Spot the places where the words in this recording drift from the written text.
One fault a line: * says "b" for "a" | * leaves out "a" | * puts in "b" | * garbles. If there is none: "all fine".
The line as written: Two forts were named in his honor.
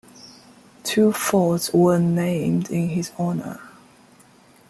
all fine